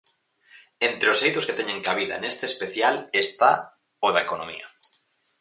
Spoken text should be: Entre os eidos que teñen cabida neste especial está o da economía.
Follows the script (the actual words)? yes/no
yes